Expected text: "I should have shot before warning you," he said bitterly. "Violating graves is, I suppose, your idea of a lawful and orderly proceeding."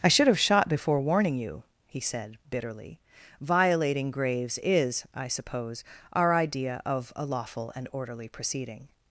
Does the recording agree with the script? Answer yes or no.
no